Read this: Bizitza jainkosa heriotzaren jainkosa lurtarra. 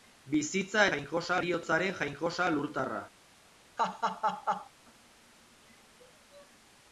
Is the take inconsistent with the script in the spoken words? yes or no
no